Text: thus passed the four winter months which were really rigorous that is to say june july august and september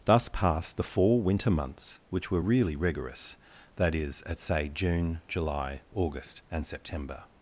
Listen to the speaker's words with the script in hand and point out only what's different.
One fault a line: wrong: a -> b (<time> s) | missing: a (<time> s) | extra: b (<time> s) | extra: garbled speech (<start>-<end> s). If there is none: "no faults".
wrong: to -> at (4.2 s)